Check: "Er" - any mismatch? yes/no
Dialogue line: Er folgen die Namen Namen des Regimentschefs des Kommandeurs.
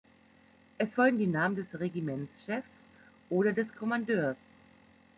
yes